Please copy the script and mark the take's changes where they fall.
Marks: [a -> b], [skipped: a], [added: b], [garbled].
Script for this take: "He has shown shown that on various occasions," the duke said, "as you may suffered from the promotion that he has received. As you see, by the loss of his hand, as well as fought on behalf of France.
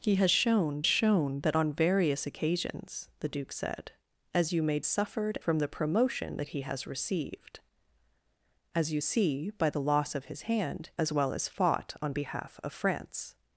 "He has shown shown that on various occasions," the duke said, "as you may suffered from the promotion that he has received. As you see, by the loss of his hand, as well as fought on behalf of France.